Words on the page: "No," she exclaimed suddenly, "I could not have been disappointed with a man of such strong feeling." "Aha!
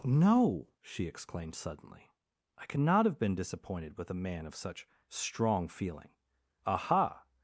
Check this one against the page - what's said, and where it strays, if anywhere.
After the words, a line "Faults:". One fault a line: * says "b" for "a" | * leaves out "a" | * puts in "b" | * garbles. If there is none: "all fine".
"No," she exclaimed suddenly, "I could not have been disappointed with a man of such strong feeling." "Aha!
Faults:
all fine